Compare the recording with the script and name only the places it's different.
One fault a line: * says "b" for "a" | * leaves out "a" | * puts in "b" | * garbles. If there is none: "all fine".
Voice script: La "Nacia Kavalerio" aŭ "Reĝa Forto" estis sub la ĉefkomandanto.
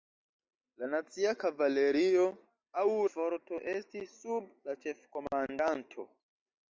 * leaves out "Reĝa"